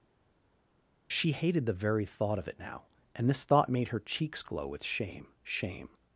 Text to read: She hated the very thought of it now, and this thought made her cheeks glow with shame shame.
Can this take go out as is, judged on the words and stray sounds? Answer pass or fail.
pass